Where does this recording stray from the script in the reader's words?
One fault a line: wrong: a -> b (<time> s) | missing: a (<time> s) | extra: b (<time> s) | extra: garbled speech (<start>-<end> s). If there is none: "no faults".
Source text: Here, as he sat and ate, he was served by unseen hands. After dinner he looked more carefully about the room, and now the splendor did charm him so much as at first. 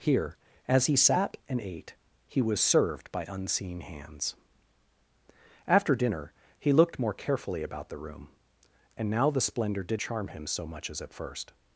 no faults